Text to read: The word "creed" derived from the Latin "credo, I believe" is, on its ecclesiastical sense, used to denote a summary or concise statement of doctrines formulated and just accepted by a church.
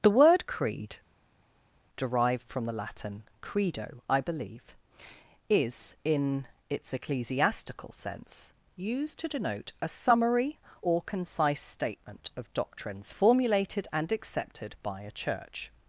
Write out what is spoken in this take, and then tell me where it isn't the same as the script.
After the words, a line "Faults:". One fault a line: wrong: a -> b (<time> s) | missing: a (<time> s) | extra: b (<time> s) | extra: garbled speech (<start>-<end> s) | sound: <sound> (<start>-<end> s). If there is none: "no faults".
The word "creed" derived from the Latin "credo, I believe" is, in its ecclesiastical sense, used to denote a summary or concise statement of doctrines formulated and accepted by a church.
Faults:
wrong: on -> in (6.0 s)
missing: just (14.1 s)